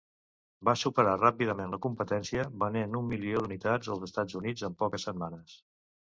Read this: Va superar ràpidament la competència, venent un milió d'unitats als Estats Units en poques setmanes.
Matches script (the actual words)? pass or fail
pass